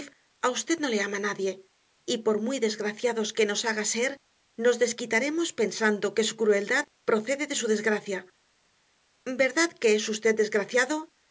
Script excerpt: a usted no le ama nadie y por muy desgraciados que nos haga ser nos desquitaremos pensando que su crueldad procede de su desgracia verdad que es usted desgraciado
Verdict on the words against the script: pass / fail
pass